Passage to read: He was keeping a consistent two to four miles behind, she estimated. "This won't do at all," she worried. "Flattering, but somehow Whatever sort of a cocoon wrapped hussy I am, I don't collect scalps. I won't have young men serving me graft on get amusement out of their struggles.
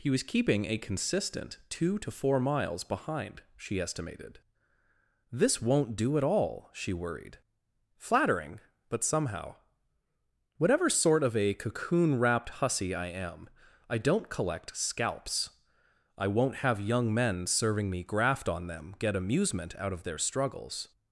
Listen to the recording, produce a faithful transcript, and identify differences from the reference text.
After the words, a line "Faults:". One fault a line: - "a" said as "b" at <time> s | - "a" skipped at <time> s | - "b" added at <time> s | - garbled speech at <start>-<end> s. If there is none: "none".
He was keeping a consistent two to four miles behind, she estimated. "This won't do at all," she worried. "Flattering, but somehow Whatever sort of a cocoon wrapped hussy I am, I don't collect scalps. I won't have young men serving me graft on them get amusement out of their struggles.
Faults:
- "them" added at 18.7 s